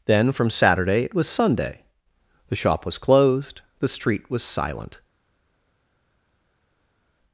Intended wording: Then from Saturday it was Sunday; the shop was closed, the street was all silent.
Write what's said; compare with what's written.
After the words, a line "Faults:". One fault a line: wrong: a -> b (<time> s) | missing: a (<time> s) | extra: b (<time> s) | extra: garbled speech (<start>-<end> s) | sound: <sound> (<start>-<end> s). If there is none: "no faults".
Then from Saturday it was Sunday; the shop was closed, the street was silent.
Faults:
missing: all (4.4 s)